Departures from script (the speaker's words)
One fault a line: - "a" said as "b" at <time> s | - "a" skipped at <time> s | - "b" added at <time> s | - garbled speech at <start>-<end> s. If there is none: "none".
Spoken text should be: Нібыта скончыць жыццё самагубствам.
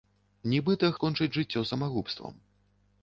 none